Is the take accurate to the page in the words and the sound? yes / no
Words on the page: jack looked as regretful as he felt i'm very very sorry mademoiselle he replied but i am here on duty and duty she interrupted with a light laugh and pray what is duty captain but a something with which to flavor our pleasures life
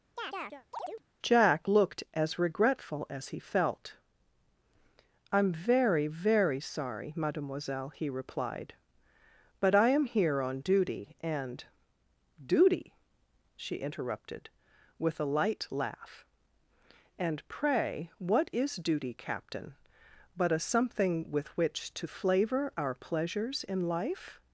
no